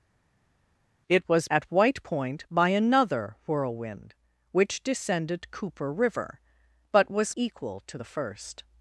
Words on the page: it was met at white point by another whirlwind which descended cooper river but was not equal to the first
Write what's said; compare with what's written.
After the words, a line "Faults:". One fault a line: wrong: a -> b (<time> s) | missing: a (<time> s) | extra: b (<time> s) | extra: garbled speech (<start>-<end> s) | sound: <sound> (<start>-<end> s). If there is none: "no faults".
it was at white point by another whirlwind which descended cooper river but was equal to the first
Faults:
missing: met (1.5 s)
missing: not (7.3 s)